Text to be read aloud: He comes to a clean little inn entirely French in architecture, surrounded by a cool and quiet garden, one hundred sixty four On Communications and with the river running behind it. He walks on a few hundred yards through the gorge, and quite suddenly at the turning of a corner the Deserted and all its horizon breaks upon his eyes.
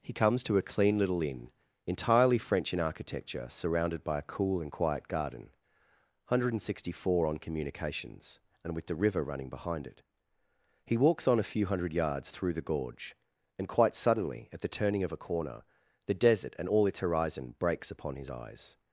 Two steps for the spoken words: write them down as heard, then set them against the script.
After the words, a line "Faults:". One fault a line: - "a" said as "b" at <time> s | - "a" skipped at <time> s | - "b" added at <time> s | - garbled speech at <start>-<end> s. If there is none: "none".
He comes to a clean little inn entirely French in architecture, surrounded by a cool and quiet garden, one hundred sixty four On Communications and with the river running behind it. He walks on a few hundred yards through the gorge, and quite suddenly at the turning of a corner the Desert and all its horizon breaks upon his eyes.
Faults:
- "Deserted" said as "Desert" at 16.1 s